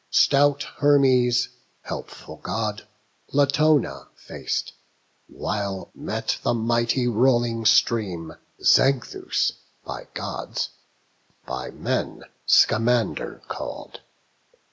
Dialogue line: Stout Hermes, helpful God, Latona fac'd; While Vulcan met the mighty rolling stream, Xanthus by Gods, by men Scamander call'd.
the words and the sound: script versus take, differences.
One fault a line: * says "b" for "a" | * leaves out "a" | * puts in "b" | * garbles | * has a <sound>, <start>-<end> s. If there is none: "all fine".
* leaves out "Vulcan"